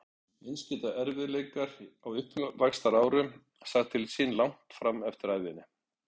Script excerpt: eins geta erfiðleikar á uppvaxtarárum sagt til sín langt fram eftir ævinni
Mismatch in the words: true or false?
false